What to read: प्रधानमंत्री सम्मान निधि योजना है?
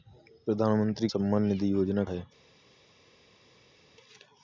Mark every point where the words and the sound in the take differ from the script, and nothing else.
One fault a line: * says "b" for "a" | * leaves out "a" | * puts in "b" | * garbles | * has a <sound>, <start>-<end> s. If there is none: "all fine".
all fine